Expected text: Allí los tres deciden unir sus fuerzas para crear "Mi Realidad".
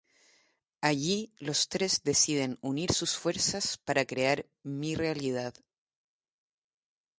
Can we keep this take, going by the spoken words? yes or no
yes